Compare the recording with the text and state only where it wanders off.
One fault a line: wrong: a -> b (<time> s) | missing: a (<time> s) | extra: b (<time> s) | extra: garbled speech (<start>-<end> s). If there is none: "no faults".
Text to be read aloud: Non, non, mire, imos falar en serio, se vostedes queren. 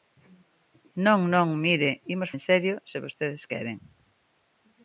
missing: falar (2.3 s)